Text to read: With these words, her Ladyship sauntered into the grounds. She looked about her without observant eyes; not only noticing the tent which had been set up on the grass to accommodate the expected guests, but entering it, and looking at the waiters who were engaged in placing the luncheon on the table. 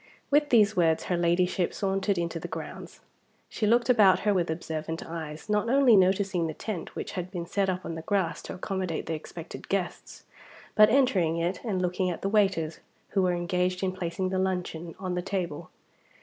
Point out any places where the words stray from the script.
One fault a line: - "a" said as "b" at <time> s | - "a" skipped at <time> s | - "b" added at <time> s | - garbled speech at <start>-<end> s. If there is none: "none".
- "without" said as "with" at 4.3 s